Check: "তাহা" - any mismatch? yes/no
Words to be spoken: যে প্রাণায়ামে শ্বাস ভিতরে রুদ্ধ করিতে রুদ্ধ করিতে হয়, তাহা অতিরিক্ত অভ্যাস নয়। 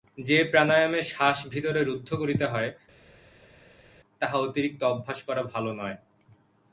no